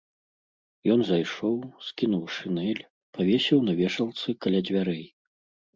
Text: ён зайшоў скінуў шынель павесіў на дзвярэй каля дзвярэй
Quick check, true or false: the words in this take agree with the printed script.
false